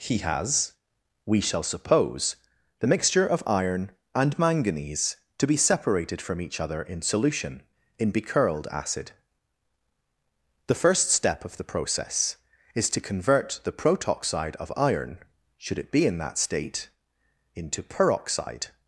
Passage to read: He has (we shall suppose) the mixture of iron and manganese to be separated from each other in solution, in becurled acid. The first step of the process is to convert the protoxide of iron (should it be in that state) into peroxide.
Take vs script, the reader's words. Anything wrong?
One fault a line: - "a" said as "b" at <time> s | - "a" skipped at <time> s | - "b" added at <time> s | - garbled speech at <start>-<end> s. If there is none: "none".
none